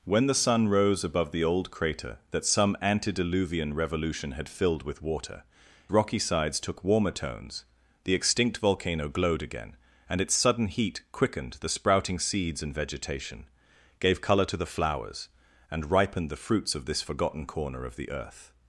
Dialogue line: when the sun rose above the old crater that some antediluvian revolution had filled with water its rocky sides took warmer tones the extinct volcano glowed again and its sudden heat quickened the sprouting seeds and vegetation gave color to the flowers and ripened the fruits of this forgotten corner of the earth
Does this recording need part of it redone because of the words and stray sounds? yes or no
yes